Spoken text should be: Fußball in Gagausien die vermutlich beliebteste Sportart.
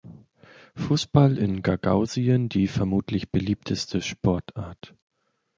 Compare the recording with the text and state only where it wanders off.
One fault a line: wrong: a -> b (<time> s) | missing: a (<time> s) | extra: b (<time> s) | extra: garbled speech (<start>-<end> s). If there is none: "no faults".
no faults